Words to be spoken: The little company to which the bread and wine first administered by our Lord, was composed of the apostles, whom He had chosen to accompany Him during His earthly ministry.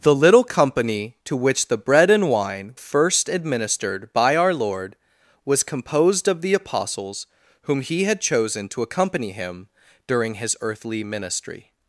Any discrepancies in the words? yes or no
no